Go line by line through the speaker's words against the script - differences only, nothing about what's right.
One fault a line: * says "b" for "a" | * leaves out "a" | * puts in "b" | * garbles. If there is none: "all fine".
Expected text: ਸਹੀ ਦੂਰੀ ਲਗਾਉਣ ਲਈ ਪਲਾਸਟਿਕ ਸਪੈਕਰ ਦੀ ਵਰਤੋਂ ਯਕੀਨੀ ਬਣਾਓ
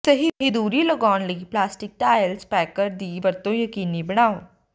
* puts in "ਟਾਇਲ"